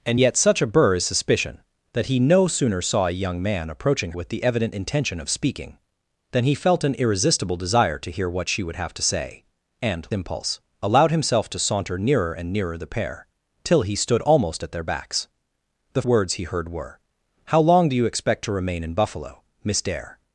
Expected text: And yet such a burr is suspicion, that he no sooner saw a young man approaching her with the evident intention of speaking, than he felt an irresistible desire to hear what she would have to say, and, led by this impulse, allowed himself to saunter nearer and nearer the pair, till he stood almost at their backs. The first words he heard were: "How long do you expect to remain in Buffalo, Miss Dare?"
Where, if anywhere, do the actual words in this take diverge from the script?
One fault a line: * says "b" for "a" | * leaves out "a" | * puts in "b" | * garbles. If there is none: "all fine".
* leaves out "her"
* leaves out "led by this"
* leaves out "first"